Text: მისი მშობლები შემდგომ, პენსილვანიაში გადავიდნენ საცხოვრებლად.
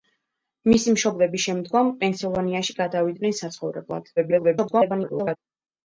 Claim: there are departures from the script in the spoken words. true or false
true